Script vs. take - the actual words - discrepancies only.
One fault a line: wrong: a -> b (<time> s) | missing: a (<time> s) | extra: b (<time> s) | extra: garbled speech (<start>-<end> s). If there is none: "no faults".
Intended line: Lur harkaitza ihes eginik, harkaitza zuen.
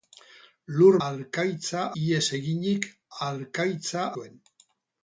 no faults